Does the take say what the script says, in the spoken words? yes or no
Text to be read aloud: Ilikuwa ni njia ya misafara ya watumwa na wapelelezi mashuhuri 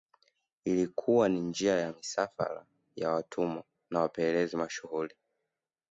yes